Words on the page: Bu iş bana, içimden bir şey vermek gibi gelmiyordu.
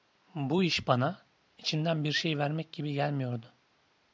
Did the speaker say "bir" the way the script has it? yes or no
yes